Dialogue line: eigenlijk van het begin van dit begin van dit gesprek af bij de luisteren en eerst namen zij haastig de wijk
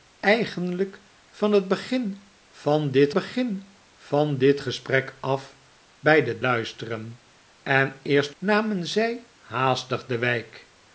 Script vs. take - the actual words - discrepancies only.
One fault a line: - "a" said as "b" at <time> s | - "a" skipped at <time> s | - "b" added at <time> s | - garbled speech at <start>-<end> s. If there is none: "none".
none